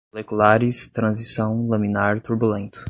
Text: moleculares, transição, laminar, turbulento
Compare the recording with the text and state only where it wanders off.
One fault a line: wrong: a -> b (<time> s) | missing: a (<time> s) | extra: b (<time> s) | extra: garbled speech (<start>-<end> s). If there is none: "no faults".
no faults